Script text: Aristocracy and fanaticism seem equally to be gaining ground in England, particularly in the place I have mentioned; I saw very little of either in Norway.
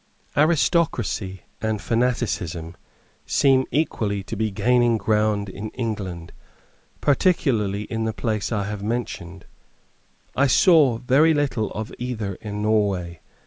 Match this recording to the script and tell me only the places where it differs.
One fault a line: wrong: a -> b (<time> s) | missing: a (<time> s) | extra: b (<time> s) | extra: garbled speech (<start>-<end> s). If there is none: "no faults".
no faults